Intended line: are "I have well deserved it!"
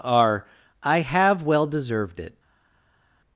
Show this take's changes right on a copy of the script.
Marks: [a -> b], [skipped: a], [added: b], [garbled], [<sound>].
are "I have well deserved it!"